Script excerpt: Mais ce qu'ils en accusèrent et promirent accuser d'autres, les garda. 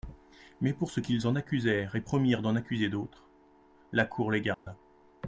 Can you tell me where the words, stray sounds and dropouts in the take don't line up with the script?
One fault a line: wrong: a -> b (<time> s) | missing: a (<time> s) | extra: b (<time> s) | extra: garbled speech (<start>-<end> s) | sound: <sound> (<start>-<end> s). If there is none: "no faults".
extra: pour (0.7 s)
extra: d'en (2.4 s)
extra: la cour (3.9 s)
sound: dropout (4.5-4.7 s)